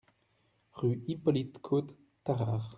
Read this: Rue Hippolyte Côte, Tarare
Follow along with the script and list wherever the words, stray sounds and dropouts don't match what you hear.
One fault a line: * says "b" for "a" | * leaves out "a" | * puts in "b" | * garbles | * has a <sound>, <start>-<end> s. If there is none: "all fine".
all fine